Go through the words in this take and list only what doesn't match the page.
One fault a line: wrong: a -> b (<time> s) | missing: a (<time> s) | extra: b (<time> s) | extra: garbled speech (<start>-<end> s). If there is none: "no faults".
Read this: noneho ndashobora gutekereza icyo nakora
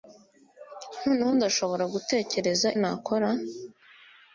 missing: icyo (2.7 s)